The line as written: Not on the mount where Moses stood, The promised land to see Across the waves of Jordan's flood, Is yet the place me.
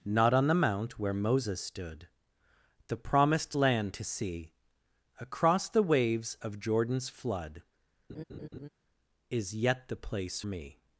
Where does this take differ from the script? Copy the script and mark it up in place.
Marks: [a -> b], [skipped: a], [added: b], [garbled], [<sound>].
Not on the mount where Moses stood, The promised land to see Across the waves of Jordan's flood, [laugh] Is yet the place me.